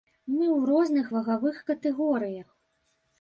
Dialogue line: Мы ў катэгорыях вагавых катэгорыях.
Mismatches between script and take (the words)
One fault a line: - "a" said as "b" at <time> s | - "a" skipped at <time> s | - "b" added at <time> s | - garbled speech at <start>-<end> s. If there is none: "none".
- "катэгорыях" said as "розных" at 0.7 s